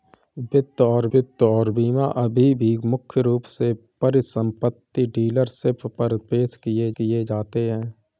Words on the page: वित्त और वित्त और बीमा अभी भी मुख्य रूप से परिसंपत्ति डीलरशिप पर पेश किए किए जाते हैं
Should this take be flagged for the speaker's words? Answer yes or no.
no